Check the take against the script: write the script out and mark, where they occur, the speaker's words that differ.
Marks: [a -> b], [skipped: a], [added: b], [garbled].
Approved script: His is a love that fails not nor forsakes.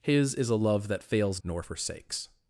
His is a love that fails [skipped: not] nor forsakes.